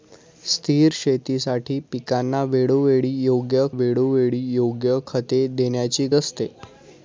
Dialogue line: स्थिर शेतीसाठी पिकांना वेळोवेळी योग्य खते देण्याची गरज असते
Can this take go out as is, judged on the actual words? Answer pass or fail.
fail